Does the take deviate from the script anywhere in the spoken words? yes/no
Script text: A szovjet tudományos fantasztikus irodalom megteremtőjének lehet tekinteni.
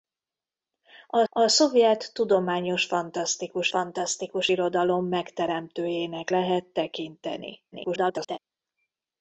yes